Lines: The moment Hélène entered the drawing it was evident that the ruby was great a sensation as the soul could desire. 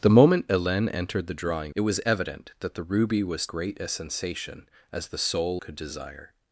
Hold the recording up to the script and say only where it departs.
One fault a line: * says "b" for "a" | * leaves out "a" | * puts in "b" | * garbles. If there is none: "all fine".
all fine